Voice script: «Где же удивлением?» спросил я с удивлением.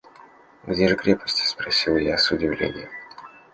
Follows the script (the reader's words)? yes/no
no